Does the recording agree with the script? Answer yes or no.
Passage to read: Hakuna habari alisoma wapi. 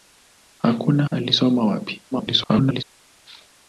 no